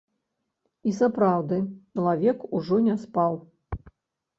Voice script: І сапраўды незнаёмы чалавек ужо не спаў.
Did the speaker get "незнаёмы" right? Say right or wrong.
wrong